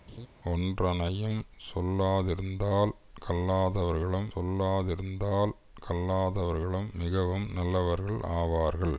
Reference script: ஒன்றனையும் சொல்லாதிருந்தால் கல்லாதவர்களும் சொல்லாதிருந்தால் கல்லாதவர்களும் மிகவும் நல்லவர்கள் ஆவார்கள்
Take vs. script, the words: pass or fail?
pass